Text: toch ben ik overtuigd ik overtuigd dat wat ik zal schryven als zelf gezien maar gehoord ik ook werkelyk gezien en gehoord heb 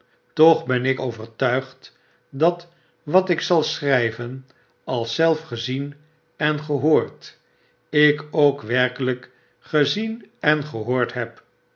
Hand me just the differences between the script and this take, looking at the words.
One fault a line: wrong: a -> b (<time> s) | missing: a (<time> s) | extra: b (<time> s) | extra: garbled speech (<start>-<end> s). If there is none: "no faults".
missing: ik overtuigd (2.0 s)
wrong: maar -> en (6.4 s)